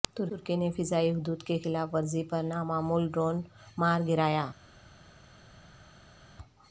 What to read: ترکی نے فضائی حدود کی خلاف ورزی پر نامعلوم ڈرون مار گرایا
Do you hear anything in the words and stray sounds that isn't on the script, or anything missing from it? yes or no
no